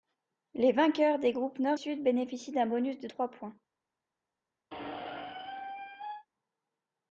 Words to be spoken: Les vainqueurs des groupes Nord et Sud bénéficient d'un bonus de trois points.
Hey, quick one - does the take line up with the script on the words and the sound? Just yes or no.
no